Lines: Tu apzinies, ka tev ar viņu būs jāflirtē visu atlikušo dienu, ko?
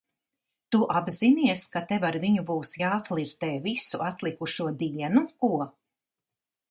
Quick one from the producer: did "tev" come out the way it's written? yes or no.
yes